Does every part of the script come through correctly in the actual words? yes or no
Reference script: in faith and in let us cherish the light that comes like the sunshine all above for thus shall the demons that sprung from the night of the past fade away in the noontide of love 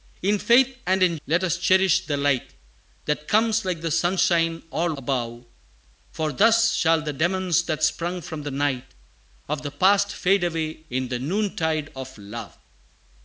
yes